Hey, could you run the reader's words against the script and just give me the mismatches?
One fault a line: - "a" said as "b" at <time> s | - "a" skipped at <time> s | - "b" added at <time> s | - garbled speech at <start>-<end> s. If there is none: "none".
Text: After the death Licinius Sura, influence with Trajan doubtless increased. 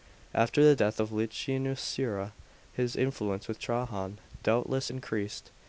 - "of" added at 1.0 s
- "his" added at 2.7 s